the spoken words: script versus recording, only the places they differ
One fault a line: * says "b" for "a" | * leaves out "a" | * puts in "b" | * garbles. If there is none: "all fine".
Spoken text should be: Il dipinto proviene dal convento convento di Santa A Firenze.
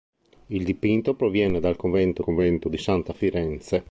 all fine